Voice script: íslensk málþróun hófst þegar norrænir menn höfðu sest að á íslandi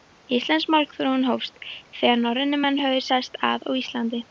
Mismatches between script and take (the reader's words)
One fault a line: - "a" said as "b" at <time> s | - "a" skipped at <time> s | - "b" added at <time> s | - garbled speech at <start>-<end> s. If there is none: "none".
none